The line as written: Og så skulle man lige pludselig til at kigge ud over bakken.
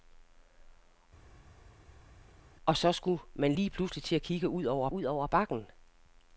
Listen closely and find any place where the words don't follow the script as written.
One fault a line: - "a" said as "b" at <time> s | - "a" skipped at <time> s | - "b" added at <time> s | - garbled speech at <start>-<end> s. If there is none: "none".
- "ud over" added at 4.9 s